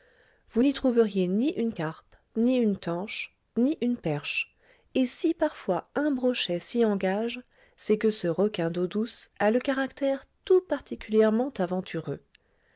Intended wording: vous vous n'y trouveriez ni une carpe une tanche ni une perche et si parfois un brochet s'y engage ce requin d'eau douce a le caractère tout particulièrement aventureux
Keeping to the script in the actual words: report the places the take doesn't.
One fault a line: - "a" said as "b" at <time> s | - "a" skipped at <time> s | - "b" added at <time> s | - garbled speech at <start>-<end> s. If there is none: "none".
- "vous" skipped at 0.6 s
- "ni" added at 2.4 s
- "c'est que" added at 7.8 s